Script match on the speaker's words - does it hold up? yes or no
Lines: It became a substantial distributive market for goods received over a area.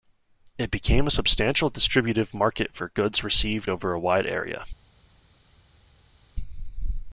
no